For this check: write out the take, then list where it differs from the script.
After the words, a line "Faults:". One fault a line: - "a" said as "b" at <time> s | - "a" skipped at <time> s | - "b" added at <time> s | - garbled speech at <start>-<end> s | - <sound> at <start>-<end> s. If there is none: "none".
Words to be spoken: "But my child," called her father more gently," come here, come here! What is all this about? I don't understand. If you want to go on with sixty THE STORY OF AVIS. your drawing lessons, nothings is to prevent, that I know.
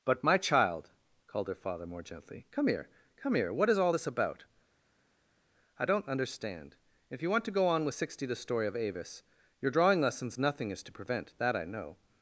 "But my child," called her father more gently," come here, come here! What is all this about? I don't understand. If you want to go on with sixty THE STORY OF AVIS. your drawing lessons, nothing is to prevent, that I know.
Faults:
- "nothings" said as "nothing" at 10.4 s